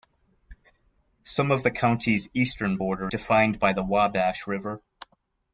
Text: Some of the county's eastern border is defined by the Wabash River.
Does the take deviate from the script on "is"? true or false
true